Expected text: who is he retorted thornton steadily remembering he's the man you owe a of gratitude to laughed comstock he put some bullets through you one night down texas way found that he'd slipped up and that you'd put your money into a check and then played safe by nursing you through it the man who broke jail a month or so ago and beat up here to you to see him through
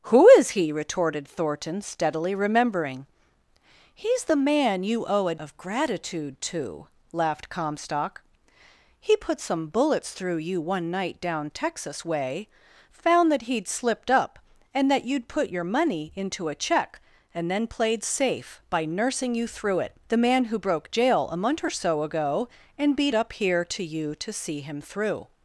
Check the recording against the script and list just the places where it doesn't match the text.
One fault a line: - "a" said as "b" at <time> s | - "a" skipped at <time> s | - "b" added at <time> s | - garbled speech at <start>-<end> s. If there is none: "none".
none